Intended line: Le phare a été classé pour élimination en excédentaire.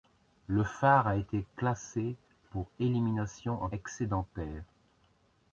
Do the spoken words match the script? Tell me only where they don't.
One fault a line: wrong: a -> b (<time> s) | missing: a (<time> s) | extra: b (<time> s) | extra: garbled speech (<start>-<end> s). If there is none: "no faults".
no faults